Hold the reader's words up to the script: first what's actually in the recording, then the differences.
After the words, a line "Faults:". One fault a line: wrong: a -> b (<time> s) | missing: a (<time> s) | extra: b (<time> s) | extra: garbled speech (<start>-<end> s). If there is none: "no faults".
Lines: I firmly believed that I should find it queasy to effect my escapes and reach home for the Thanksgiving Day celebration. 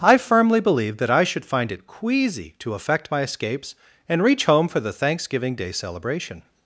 I firmly believed that I should find it queasy to effect my escapes and reach home for the Thanksgiving Day celebration.
Faults:
no faults